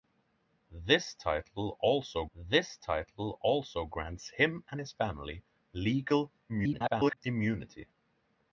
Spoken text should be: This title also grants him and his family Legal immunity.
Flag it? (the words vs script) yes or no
yes